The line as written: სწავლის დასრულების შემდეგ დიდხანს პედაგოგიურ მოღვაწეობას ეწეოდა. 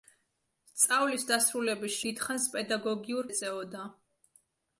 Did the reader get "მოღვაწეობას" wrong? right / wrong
wrong